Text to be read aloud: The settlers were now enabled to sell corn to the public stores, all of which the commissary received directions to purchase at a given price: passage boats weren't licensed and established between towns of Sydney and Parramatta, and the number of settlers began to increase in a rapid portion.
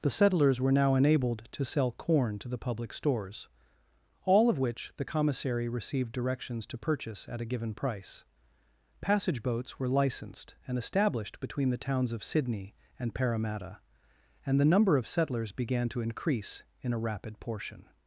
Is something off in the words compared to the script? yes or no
yes